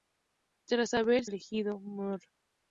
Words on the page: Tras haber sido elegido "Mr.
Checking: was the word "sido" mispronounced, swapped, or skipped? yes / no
yes